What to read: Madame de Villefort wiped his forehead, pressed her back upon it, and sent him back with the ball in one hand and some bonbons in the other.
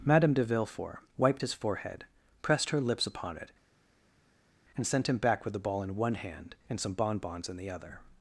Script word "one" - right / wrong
right